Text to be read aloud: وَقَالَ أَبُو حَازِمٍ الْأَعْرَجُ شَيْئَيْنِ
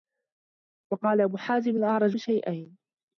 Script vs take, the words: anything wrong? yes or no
no